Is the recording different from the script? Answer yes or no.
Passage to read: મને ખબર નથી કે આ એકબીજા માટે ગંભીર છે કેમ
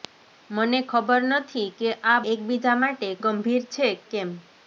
no